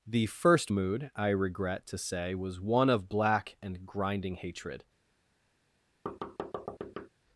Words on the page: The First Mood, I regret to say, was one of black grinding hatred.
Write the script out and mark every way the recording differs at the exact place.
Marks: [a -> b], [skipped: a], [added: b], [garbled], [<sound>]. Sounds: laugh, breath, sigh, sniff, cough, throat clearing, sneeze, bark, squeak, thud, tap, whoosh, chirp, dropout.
The First Mood, I regret to say, was one of black [added: and] grinding hatred. [thud]